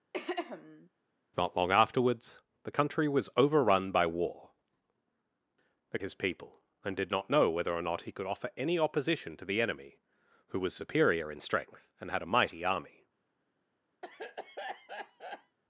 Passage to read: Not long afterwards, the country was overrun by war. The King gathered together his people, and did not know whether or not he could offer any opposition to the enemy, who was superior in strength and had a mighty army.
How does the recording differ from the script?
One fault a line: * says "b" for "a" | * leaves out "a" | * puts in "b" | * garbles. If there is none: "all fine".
* leaves out "King gathered together"